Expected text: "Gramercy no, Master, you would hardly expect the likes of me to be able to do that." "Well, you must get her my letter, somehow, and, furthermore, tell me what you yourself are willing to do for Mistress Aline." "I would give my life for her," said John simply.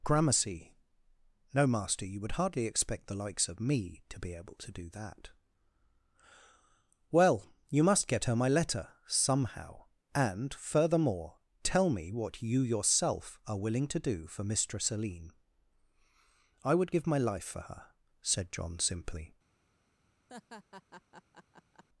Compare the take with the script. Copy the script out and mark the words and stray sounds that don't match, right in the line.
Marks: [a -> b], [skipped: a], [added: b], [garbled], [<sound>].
"Gramercy no, Master, you would hardly expect the likes of me to be able to do that." "Well, you must get her my letter, somehow, and, furthermore, tell me what you yourself are willing to do for Mistress Aline." "I would give my life for her," said John simply. [laugh]